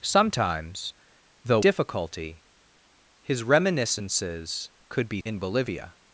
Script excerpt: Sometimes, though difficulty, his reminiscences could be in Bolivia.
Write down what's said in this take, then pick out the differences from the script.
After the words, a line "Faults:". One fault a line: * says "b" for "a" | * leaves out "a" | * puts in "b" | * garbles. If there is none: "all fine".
Sometimes, though difficulty, his reminiscences could be in Bolivia.
Faults:
all fine